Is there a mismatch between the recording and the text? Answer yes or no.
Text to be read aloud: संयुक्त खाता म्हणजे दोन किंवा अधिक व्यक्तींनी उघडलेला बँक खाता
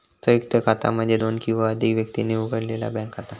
no